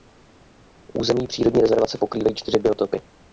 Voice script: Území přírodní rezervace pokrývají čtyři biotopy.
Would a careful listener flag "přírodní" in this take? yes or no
no